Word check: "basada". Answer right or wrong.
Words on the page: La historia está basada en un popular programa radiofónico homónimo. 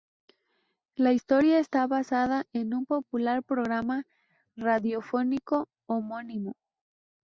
right